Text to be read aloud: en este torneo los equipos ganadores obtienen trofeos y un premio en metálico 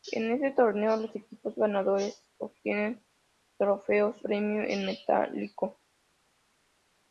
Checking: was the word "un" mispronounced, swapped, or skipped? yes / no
yes